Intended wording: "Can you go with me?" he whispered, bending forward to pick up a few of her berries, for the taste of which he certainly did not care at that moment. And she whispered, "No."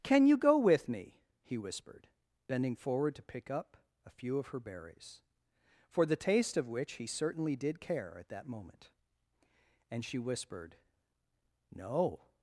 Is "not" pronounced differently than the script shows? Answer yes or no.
yes